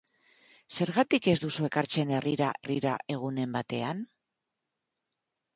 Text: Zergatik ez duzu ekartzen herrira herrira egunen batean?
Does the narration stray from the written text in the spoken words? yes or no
no